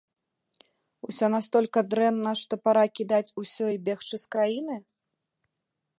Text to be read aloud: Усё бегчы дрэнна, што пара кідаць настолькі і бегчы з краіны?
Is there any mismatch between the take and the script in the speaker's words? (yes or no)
yes